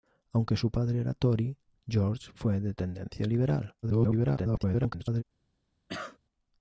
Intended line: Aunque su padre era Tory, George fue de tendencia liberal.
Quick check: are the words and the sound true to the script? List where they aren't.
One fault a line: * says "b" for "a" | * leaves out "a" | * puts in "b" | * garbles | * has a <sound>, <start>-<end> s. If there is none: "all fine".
* garbles
* has a cough, 5.9-6.2 s